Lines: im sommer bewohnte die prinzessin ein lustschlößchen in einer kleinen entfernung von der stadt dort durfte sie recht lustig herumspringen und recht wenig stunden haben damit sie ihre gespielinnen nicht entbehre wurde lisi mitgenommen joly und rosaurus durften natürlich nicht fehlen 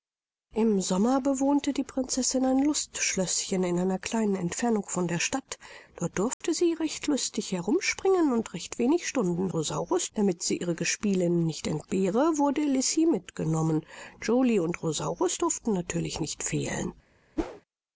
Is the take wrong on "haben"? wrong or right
wrong